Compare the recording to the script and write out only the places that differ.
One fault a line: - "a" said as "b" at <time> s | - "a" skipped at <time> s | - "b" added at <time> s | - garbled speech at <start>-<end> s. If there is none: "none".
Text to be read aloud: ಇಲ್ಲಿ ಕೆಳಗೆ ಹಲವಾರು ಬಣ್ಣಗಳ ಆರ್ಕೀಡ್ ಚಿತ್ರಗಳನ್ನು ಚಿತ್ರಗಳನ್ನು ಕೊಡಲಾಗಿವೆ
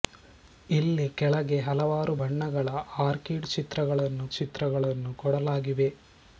none